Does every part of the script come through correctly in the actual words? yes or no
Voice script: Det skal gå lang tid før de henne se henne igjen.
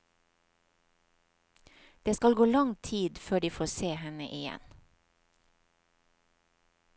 no